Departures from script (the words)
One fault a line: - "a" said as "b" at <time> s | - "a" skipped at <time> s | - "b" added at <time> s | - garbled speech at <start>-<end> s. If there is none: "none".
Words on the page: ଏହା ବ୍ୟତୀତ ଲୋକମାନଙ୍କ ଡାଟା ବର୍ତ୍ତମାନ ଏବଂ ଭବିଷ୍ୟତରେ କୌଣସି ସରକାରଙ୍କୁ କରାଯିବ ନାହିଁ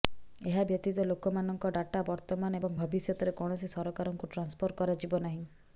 - "ଟ୍ରାନ୍ସଫର" added at 4.3 s